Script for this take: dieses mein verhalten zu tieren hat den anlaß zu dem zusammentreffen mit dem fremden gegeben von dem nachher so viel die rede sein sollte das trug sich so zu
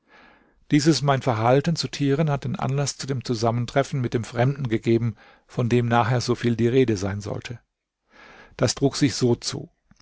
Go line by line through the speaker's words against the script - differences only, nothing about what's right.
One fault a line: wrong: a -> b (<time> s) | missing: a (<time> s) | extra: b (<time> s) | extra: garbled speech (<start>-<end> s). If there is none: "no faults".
no faults